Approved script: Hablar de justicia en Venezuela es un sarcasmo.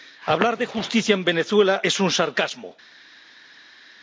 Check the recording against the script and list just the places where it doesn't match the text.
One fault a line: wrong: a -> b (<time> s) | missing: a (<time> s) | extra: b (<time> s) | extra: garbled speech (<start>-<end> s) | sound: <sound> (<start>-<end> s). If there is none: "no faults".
no faults